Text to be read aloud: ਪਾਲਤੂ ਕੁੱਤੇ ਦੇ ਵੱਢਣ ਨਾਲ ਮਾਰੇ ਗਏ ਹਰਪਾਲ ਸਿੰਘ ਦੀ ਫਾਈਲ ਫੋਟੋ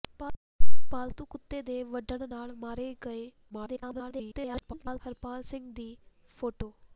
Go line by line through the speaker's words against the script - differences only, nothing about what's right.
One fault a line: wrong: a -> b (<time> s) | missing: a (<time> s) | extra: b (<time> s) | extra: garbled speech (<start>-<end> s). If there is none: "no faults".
extra: garbled speech (3.5-5.0 s)
missing: ਫਾਈਲ (6.0 s)